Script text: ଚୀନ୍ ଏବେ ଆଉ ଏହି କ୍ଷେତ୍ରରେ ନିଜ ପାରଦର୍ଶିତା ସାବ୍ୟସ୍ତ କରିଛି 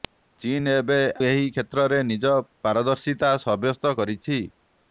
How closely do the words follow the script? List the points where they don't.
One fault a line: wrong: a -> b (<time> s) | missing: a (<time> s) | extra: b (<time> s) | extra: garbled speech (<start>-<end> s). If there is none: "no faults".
missing: ଆଉ (1.0 s)